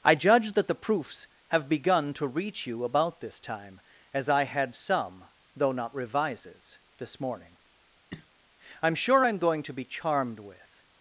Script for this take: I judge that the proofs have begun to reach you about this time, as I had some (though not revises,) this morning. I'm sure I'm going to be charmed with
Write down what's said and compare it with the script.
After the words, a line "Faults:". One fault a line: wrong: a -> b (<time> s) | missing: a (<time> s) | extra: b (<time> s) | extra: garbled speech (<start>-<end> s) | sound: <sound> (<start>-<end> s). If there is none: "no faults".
I judge that the proofs have begun to reach you about this time, as I had some (though not revises,) this morning. I'm sure I'm going to be charmed with
Faults:
sound: cough (8.1-8.3 s)